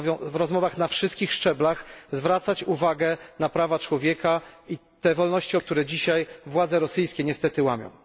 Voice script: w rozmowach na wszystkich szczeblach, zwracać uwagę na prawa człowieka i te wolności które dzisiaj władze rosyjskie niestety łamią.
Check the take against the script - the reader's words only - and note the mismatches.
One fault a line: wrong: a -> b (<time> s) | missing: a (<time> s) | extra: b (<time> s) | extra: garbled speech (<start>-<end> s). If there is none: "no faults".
no faults